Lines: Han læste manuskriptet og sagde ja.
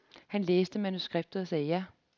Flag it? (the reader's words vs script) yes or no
no